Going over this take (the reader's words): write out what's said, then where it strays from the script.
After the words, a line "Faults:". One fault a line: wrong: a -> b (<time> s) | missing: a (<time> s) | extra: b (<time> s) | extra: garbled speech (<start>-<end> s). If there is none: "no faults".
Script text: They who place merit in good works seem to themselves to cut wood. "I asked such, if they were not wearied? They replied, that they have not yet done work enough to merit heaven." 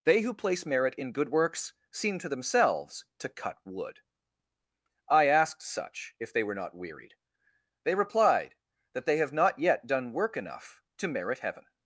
They who place merit in good works seem to themselves to cut wood. "I asked such, if they were not wearied? They replied, that they have not yet done work enough to merit heaven."
Faults:
no faults